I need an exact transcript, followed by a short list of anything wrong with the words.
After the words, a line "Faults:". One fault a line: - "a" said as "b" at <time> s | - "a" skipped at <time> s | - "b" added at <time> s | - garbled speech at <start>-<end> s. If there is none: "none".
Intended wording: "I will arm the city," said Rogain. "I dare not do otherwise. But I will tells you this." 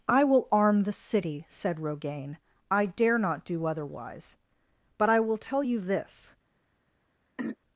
"I will arm the city," said Rogain. "I dare not do otherwise. But I will tell you this."
Faults:
- "tells" said as "tell" at 5.4 s